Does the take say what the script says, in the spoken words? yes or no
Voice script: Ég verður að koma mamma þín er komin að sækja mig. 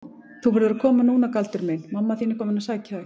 no